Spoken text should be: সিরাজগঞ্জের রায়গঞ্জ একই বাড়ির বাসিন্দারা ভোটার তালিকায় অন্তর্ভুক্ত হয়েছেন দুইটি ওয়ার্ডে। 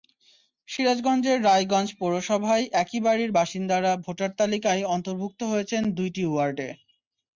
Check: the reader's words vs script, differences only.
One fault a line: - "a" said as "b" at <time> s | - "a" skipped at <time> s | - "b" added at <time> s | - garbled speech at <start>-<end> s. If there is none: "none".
- "পৌরসভায়" added at 2.0 s